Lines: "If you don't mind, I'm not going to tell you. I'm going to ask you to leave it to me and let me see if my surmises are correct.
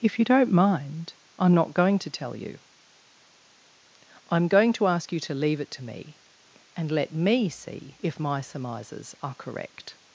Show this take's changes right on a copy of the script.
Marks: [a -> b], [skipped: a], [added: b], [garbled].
"If you don't mind, I'm not going to tell you. I'm going to ask you to leave it to me and let me see if my surmises are correct.